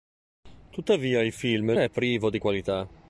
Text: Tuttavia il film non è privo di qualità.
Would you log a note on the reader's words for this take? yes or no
yes